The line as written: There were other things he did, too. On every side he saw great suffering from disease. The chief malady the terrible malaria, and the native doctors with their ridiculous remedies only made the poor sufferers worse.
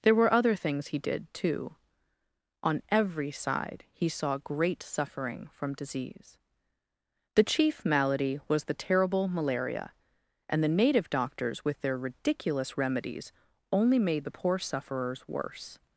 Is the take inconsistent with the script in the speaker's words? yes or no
yes